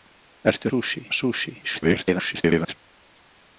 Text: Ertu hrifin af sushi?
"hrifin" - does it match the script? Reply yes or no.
no